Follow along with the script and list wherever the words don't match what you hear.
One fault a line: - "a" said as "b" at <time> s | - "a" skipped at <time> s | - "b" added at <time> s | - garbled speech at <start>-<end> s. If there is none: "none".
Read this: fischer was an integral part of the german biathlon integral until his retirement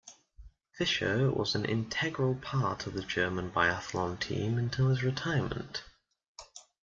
- "integral" said as "team" at 4.2 s